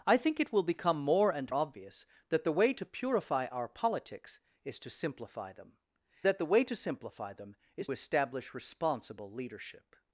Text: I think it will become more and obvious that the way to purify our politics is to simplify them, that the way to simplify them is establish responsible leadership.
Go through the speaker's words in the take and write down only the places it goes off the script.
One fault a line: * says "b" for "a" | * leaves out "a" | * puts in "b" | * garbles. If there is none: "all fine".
all fine